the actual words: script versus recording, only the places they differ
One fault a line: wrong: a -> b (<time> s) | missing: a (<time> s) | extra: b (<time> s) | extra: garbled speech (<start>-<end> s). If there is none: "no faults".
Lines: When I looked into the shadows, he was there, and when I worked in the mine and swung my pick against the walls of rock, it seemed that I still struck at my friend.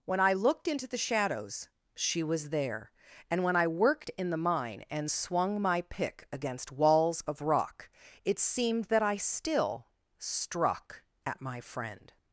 wrong: he -> she (1.9 s)
missing: the (6.7 s)